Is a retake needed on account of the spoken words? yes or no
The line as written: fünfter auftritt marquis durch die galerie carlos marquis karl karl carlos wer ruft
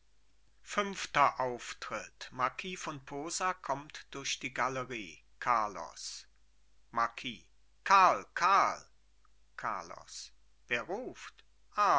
yes